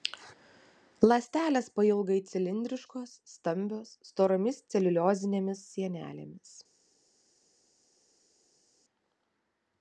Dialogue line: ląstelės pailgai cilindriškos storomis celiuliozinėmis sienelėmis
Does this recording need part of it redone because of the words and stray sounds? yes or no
yes